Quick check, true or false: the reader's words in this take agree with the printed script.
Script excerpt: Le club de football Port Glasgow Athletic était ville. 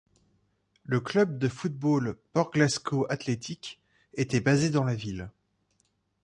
false